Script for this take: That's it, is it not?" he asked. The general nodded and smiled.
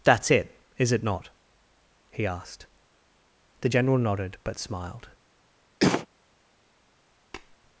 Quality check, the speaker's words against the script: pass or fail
fail